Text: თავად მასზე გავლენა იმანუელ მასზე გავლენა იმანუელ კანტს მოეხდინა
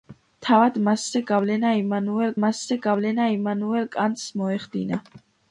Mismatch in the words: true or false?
false